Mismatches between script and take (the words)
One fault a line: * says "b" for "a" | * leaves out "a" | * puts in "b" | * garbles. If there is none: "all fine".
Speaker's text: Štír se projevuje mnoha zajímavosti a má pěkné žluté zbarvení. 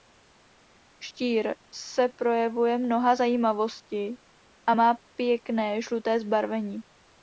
all fine